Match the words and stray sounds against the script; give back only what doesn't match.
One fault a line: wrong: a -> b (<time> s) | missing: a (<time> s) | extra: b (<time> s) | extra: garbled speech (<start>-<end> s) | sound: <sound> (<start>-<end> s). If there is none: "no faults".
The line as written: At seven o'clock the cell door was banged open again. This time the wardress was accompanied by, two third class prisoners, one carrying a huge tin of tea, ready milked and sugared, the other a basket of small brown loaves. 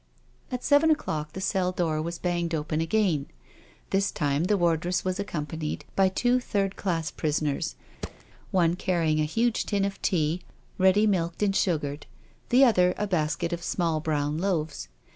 sound: thud (8.0-8.2 s)